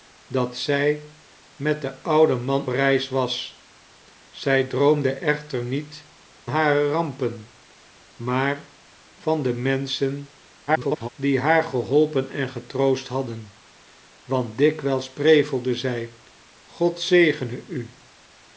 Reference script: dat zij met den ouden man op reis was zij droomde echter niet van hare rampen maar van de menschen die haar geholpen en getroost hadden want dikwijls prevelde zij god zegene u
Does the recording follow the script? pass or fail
fail